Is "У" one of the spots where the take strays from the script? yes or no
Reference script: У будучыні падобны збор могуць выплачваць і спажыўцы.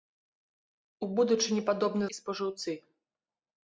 no